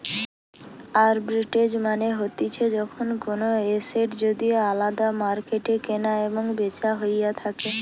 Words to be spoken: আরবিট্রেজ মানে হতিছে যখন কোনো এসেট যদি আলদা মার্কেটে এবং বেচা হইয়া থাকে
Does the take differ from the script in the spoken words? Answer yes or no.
yes